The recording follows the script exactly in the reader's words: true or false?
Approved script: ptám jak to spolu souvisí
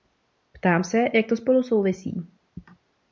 false